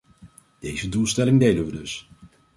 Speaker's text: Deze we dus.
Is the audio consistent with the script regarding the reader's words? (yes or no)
no